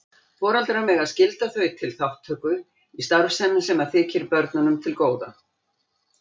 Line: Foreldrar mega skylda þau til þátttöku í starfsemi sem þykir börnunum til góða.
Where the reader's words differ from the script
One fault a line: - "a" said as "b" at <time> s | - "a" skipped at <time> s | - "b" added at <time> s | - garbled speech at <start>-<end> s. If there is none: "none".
none